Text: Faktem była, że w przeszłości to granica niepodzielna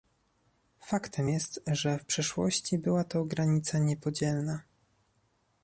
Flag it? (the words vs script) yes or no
yes